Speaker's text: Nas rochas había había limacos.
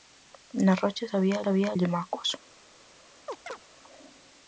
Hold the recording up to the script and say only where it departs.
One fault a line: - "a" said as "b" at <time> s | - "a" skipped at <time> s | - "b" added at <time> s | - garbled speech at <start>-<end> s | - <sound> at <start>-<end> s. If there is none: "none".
- chirp at 3.3-3.6 s